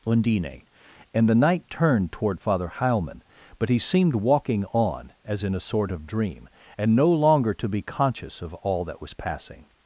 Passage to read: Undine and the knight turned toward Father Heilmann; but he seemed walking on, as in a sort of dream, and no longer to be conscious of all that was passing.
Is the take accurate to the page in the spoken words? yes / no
yes